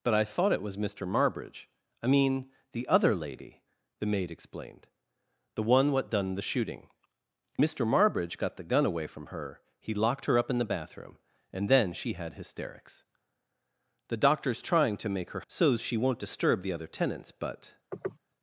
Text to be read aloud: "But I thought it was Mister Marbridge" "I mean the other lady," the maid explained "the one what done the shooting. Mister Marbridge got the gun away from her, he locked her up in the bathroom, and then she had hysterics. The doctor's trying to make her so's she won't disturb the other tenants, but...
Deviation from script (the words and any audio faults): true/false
true